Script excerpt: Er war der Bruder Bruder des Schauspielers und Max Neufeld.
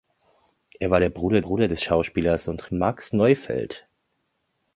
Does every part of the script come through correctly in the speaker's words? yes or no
yes